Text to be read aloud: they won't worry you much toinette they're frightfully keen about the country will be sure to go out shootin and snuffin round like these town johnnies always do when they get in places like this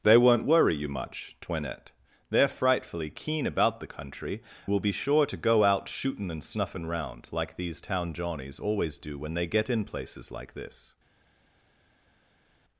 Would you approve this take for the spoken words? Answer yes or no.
yes